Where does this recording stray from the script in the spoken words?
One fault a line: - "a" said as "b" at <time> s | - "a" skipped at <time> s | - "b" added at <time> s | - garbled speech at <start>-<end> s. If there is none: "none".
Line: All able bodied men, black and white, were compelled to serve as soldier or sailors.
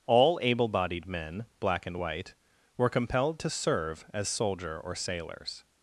none